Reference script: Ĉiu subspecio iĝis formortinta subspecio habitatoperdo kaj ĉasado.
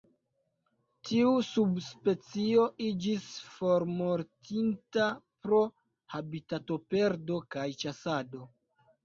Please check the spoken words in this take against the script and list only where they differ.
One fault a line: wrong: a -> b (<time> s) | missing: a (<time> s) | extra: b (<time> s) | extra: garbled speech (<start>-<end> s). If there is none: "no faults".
wrong: Ĉiu -> Tiu (1.1 s)
wrong: subspecio -> pro (5.5 s)